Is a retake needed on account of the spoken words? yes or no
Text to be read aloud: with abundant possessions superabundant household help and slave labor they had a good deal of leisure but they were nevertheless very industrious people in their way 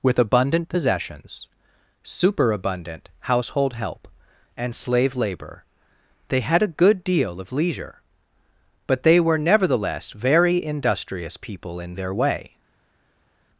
no